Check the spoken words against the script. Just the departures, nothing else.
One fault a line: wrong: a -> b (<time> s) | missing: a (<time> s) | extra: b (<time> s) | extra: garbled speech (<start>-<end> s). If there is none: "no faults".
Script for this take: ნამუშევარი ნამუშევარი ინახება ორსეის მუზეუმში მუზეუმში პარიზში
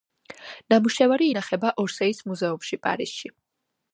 missing: ნამუშევარი (1.3 s)
missing: მუზეუმში (2.8 s)